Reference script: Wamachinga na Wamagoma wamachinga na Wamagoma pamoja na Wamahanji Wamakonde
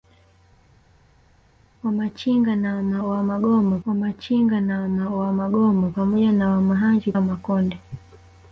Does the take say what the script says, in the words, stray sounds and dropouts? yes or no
yes